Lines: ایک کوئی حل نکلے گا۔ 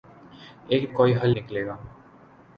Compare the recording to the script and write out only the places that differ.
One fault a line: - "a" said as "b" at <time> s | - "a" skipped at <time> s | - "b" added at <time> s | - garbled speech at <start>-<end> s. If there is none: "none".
none